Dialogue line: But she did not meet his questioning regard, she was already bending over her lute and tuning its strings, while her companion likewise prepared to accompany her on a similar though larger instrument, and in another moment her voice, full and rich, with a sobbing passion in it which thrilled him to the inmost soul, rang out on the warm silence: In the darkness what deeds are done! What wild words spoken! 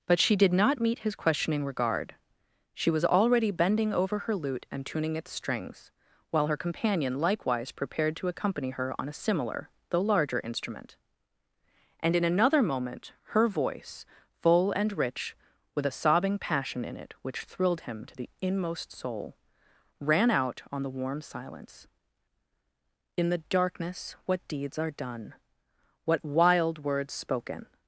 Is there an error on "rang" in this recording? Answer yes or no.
yes